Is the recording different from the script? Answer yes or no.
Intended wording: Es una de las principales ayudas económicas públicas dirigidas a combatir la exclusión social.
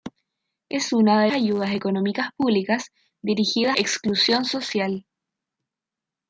yes